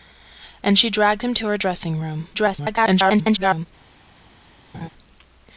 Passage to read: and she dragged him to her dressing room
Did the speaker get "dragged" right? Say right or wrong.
right